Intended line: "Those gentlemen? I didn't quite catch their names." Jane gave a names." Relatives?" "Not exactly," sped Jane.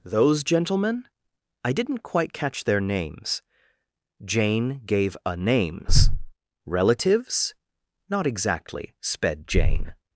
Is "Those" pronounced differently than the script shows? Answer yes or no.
no